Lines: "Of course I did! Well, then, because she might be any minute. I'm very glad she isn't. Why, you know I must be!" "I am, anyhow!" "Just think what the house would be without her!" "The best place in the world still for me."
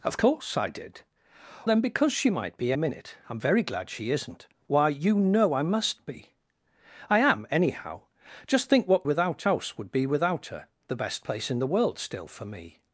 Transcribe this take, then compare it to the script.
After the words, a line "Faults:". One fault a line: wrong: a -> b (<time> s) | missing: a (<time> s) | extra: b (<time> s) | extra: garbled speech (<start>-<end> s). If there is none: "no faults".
"Of course I did! Then, because she might be minute. I'm very glad she isn't. Why, you know I must be!" "I am, anyhow!" "Just think what without house would be without her!" "The best place in the world still for me."
Faults:
missing: Well (1.0 s)
missing: any (2.7 s)
wrong: the -> without (9.0 s)